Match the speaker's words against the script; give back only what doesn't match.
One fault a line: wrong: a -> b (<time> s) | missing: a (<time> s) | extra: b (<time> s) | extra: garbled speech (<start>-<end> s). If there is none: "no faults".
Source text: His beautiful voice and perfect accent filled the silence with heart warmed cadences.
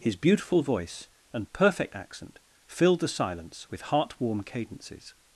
wrong: warmed -> warm (4.2 s)